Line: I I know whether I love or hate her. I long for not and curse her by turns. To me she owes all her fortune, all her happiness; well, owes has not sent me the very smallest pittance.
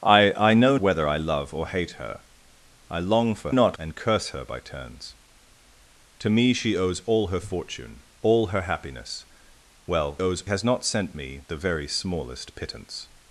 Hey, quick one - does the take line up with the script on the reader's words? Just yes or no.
yes